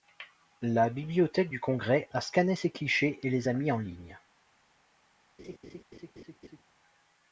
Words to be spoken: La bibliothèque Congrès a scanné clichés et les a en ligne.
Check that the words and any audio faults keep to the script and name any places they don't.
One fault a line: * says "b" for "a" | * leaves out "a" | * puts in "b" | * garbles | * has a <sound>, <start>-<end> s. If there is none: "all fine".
* puts in "du"
* puts in "ces"
* puts in "mis"
* has a laugh, 5.4-6.6 s